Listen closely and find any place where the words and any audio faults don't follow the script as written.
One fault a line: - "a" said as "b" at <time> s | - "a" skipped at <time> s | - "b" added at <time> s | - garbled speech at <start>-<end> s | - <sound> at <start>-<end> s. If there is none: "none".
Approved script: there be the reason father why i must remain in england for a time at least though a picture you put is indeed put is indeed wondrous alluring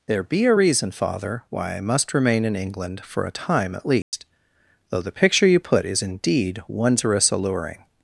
- "the" said as "a" at 0.5 s
- dropout at 4.0-4.1 s
- "a" said as "the" at 5.0 s
- "put is indeed" skipped at 6.6 s